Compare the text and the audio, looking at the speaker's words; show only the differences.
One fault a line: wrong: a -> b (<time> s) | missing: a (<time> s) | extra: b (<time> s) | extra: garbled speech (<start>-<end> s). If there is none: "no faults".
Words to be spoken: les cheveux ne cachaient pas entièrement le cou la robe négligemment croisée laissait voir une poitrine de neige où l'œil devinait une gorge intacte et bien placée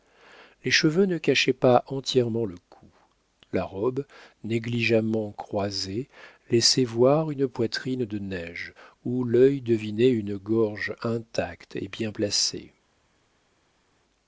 no faults